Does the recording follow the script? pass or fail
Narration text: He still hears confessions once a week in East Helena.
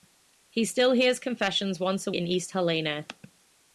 fail